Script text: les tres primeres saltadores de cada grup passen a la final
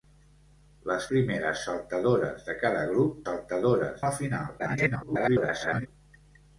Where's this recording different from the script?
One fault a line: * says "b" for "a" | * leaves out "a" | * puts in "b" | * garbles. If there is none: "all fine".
* leaves out "tres"
* says "saltadores" for "passen"
* garbles